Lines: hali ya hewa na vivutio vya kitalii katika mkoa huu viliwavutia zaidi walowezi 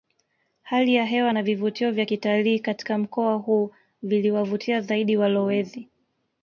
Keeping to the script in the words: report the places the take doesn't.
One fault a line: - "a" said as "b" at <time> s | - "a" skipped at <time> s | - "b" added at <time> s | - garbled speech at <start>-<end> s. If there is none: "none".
none